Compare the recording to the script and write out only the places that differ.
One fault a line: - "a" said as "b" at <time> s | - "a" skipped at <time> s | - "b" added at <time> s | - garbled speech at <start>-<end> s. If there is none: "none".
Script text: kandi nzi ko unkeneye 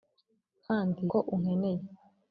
- "nzi" skipped at 1.0 s